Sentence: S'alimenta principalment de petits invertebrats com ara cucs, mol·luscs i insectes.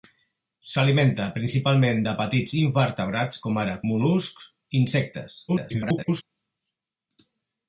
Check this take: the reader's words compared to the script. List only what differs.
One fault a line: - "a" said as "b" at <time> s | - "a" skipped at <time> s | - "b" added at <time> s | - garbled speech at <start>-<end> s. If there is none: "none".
- "cucs" skipped at 3.7 s
- garbled speech at 5.5-6.2 s